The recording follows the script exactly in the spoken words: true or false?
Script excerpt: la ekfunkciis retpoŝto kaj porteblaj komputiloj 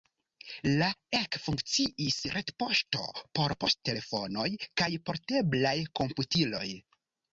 false